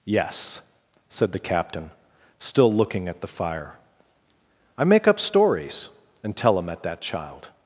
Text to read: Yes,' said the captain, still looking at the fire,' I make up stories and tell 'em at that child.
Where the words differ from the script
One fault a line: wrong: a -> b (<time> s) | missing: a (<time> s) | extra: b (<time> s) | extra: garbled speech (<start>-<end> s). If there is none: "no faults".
no faults